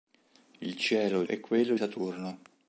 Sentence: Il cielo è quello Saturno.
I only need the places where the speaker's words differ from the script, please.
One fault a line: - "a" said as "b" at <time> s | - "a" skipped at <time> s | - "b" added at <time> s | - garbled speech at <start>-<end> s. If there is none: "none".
none